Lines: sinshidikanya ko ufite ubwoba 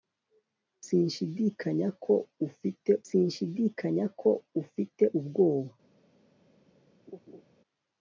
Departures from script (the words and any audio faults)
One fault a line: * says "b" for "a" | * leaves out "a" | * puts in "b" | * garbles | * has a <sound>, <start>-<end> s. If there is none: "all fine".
* puts in "sinshidikanya ko ufite"
* has a laugh, 7.1-7.4 s